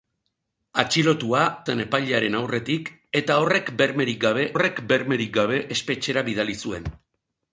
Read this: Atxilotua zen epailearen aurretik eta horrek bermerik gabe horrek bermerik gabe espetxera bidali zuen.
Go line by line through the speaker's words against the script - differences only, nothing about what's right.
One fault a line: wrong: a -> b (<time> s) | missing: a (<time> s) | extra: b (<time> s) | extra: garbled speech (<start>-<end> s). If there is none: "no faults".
no faults